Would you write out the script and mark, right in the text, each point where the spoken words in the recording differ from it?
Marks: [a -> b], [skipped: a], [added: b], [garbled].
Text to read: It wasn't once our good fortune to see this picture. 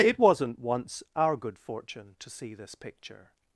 It wasn't once our good fortune to see this picture.